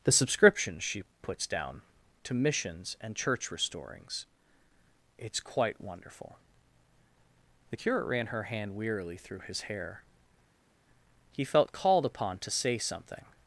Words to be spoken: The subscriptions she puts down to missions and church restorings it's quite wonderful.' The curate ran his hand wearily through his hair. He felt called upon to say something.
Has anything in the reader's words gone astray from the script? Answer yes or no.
yes